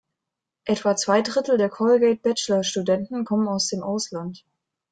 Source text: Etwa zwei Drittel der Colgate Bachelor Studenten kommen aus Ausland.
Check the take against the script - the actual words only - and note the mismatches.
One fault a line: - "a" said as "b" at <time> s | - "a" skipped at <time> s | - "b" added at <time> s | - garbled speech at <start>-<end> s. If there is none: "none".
- "dem" added at 3.7 s